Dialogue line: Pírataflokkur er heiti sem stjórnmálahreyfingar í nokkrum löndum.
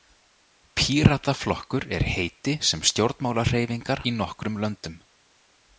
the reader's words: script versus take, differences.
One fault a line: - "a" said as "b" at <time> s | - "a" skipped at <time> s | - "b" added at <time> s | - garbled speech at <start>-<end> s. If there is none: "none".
none